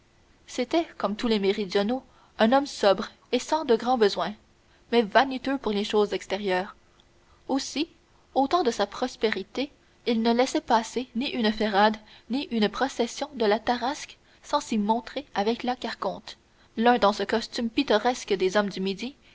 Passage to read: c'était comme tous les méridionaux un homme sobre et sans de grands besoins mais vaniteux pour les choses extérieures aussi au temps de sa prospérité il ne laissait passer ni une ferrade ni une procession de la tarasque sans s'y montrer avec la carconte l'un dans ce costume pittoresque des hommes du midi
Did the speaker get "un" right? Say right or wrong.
right